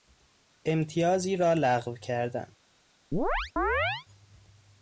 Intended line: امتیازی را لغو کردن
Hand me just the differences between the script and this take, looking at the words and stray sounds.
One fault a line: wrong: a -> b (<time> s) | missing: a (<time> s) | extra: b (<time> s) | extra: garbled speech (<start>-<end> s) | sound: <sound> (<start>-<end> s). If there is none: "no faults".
sound: chirp (3.1-4.1 s)